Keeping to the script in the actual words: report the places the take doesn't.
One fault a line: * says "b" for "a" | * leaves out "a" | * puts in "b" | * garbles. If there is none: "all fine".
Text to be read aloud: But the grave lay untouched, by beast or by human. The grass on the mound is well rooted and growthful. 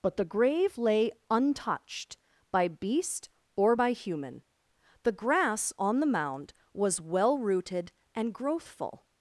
* says "was" for "is"